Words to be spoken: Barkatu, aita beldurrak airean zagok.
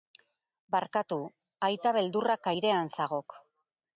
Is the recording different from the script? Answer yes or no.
no